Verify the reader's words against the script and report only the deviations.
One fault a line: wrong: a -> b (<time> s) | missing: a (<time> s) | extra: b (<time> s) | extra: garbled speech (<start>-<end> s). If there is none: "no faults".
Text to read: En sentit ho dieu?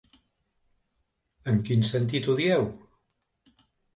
extra: quin (1.7 s)